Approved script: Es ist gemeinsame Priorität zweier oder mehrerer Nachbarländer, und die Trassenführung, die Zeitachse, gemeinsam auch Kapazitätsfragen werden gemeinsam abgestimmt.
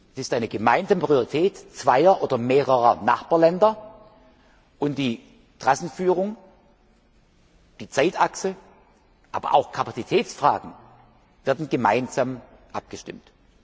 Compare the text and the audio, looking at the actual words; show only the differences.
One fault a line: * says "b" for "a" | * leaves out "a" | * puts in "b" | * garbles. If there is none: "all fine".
* puts in "eine"
* says "aber" for "gemeinsam"